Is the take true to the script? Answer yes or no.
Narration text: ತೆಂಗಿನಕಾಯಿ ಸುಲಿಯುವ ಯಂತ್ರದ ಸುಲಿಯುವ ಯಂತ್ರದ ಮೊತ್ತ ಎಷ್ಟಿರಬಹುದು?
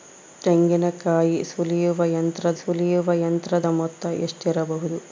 yes